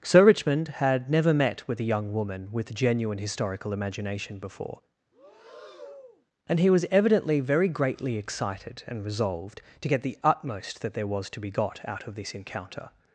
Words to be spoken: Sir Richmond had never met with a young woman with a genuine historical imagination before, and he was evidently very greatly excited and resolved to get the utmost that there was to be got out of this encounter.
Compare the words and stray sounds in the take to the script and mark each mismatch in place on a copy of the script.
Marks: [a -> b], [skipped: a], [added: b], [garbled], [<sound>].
Sir Richmond had never met with a young woman with [skipped: a] genuine historical imagination before, [breath] and he was evidently very greatly excited and resolved to get the utmost that there was to be got out of this encounter.